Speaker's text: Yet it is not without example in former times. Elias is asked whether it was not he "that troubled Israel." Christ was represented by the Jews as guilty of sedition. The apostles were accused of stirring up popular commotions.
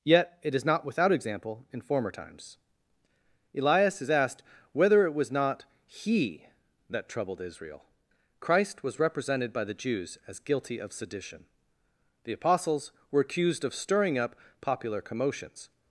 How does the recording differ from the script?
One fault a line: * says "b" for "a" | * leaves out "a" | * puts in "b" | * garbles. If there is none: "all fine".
all fine